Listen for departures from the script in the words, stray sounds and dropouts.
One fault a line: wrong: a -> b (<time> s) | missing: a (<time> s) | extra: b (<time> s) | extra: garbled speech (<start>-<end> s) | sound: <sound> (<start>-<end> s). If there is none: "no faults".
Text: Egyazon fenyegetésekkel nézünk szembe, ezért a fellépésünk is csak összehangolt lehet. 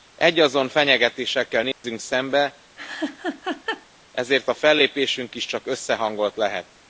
sound: dropout (1.7-1.8 s)
sound: laugh (2.8-3.9 s)